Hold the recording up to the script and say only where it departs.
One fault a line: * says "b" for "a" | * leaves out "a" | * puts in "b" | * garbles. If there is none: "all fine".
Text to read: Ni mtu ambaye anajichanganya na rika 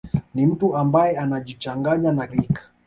all fine